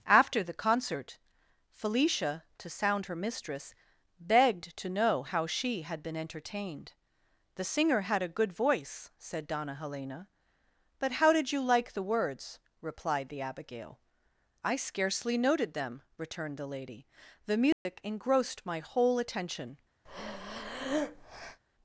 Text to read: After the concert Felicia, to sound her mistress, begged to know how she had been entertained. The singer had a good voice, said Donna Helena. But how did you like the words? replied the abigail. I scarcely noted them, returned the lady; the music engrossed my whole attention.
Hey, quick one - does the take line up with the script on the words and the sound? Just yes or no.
no